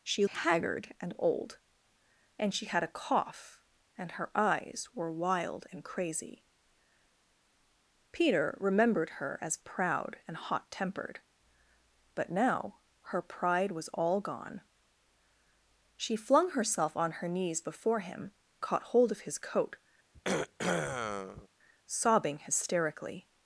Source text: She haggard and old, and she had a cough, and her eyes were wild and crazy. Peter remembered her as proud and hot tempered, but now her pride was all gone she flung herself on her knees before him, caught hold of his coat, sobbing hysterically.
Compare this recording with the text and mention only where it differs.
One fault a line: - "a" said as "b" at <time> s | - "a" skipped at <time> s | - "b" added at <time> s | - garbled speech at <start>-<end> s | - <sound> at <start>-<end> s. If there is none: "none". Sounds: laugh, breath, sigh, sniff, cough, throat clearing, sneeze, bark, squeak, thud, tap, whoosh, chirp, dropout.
- throat clearing at 20.1-21.5 s